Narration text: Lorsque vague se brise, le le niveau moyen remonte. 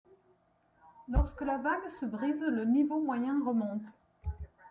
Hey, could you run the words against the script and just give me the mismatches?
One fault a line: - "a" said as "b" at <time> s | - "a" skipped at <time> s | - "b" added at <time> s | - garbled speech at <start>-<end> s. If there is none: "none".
- "la" added at 1.4 s
- "le" skipped at 2.6 s